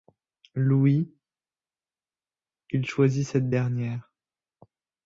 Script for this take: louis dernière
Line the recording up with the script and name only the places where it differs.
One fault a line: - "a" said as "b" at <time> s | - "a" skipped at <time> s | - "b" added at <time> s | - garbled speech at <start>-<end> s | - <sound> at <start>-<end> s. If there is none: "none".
- "il choisit cette" added at 2.7 s